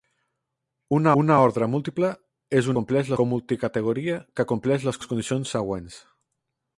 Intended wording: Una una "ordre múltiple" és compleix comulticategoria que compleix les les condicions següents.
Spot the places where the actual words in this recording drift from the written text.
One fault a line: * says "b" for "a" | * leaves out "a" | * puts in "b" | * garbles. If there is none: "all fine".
all fine